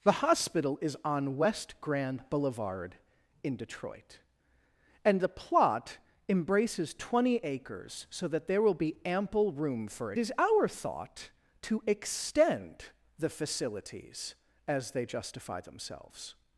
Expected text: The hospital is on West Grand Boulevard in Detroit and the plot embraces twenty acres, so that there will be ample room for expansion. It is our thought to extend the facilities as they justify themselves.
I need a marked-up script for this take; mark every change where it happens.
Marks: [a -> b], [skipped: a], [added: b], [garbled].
The hospital is on West Grand Boulevard in Detroit and the plot embraces twenty acres, so that there will be ample room for [skipped: expansion. It] is our thought to extend the facilities as they justify themselves.